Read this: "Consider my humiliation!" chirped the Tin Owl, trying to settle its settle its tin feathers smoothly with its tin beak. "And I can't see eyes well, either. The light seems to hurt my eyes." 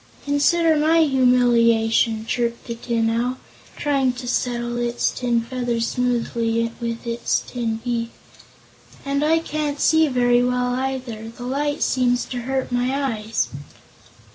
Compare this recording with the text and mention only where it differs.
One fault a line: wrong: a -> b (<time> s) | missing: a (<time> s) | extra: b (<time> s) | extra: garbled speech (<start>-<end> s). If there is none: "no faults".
missing: settle its (5.1 s)
wrong: eyes -> very (10.1 s)